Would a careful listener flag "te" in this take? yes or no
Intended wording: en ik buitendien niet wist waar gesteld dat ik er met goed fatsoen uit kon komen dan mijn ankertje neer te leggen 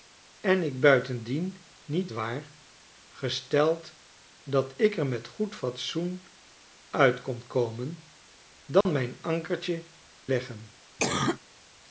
yes